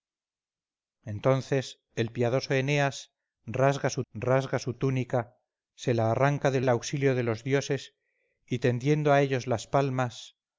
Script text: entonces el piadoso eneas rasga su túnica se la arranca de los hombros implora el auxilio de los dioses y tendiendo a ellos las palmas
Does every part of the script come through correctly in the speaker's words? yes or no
no